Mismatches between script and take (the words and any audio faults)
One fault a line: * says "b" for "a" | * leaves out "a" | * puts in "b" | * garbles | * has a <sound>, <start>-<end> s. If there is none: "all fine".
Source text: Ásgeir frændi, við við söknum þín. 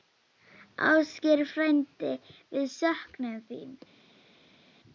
* leaves out "við"